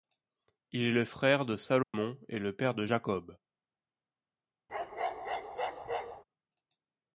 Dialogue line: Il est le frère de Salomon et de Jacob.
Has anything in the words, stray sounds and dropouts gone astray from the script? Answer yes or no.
yes